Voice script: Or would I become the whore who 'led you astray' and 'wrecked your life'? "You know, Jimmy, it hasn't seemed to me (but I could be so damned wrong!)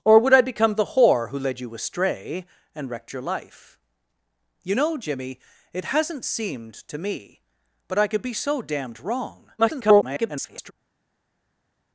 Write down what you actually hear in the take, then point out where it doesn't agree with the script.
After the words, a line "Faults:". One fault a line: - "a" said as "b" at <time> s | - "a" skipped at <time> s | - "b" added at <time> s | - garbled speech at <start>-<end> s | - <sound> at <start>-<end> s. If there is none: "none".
Or would I become the whore who 'led you astray' and 'wrecked your life'? "You know, Jimmy, it hasn't seemed to me (but I could be so damned wrong!) [garbled]
Faults:
- garbled speech at 9.6-10.7 s